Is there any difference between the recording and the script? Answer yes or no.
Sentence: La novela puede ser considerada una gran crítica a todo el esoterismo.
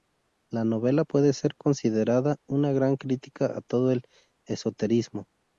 no